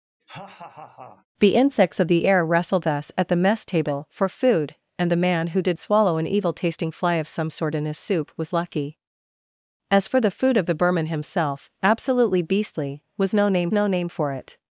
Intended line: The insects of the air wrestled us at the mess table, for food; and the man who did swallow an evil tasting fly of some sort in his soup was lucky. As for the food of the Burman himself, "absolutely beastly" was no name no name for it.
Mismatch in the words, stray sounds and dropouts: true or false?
true